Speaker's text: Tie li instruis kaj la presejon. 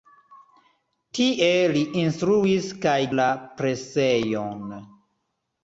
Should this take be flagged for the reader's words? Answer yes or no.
no